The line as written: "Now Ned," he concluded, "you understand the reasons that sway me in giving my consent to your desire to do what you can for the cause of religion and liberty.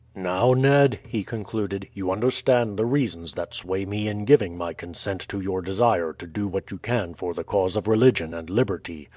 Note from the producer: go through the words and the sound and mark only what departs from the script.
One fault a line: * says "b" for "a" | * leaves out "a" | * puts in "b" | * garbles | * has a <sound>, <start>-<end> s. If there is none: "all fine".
all fine